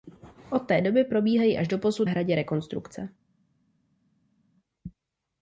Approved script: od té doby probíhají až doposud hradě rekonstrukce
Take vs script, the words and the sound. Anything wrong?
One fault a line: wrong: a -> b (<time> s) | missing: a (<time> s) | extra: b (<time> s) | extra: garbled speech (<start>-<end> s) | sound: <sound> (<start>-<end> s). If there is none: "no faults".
no faults